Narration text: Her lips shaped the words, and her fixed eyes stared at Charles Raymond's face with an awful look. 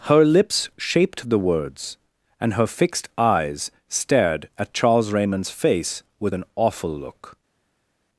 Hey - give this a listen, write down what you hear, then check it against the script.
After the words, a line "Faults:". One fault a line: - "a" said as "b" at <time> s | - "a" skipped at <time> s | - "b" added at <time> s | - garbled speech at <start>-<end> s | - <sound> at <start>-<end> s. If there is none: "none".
Her lips shaped the words, and her fixed eyes stared at Charles Raymond's face with an awful look.
Faults:
none